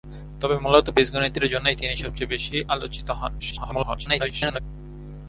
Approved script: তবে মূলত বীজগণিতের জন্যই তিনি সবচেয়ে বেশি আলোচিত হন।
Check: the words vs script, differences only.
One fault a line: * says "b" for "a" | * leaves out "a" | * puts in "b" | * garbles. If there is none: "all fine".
* garbles